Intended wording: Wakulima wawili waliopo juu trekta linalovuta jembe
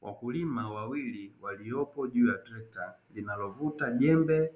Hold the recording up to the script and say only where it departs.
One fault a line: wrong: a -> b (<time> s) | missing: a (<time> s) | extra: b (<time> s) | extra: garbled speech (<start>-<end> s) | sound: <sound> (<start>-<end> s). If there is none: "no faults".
extra: ya (2.3 s)